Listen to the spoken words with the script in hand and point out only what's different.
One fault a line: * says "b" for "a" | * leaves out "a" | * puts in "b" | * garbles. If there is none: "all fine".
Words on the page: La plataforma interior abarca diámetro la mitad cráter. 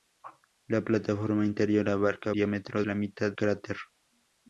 all fine